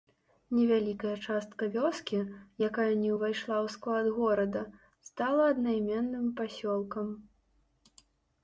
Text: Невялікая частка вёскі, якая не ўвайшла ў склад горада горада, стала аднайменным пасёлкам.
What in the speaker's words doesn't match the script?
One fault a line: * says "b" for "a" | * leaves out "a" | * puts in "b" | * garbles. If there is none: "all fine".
* leaves out "горада"